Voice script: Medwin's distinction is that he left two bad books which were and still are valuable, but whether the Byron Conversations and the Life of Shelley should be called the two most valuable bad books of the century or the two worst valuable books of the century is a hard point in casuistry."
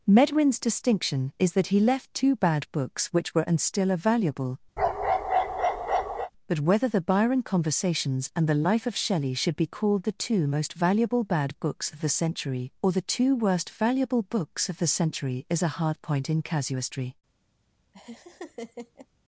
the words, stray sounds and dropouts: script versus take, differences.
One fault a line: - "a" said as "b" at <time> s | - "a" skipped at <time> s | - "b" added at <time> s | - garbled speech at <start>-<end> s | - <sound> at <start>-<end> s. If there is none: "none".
- bark at 4.8-6.3 s
- laugh at 17.9-19.1 s